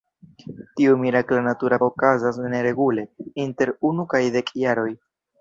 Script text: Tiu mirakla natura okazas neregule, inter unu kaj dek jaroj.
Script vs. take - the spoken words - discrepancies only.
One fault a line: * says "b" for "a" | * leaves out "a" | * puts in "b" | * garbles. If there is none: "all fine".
all fine